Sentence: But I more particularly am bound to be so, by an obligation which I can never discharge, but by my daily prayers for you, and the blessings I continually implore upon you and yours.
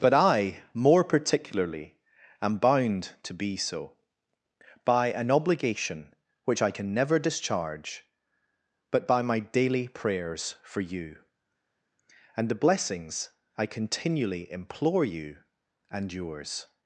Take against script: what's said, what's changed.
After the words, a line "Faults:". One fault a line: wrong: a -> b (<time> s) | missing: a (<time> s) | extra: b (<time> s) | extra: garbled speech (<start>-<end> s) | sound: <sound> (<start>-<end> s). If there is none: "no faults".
But I more particularly am bound to be so, by an obligation which I can never discharge, but by my daily prayers for you, and the blessings I continually implore you and yours.
Faults:
missing: upon (15.1 s)